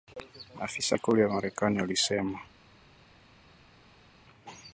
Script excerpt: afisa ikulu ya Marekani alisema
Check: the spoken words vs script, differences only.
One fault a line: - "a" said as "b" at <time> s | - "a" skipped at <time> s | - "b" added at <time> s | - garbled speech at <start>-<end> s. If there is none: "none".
none